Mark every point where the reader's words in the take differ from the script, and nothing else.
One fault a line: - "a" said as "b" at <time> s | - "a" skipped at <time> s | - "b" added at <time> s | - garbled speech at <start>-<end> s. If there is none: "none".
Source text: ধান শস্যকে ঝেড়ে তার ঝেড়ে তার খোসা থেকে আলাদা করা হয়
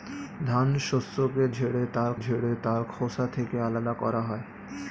none